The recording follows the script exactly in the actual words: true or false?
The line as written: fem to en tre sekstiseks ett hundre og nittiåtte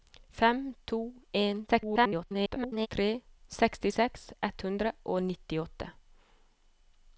false